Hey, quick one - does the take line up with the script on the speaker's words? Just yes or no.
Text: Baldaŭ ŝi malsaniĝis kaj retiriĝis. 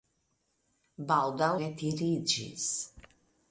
no